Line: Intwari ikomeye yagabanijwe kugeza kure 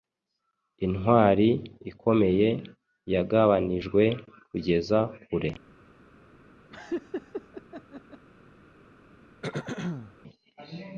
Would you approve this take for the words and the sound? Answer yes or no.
no